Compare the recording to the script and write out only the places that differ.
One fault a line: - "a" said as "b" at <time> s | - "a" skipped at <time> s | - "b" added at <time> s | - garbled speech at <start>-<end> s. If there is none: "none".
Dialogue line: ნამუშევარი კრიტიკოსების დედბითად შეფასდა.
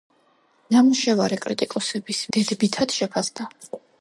none